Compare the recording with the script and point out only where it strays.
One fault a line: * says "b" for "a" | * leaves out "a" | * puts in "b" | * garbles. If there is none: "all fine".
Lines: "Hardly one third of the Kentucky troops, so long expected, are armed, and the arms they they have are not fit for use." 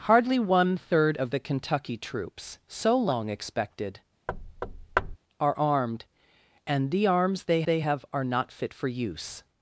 all fine